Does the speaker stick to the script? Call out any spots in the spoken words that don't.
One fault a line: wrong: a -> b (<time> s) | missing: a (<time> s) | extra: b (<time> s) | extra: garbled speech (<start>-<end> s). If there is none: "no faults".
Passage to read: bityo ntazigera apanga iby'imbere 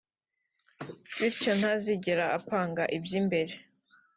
no faults